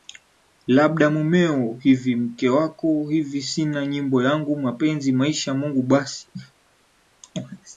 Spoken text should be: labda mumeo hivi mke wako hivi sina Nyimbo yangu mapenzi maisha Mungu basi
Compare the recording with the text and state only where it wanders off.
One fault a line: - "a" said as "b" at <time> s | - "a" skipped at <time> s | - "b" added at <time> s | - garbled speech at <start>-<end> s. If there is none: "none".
none